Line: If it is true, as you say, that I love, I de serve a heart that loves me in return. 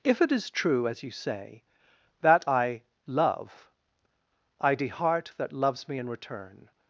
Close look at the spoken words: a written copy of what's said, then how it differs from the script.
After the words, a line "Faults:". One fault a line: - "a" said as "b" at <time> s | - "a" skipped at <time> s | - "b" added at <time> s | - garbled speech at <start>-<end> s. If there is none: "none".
If it is true, as you say, that I love, I de heart that loves me in return.
Faults:
- "serve a" skipped at 4.9 s